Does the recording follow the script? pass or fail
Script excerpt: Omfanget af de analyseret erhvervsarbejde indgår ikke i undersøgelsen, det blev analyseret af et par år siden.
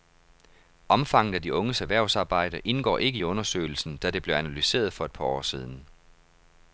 fail